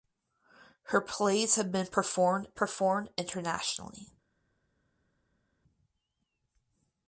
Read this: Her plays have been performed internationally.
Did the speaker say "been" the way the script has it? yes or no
yes